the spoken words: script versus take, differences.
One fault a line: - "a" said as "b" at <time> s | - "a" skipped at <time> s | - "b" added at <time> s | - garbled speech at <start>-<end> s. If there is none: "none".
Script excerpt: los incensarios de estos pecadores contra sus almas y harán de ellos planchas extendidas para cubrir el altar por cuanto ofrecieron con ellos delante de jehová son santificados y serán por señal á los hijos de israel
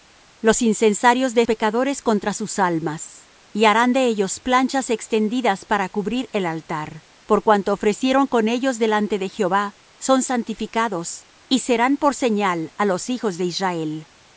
- "estos" skipped at 1.4 s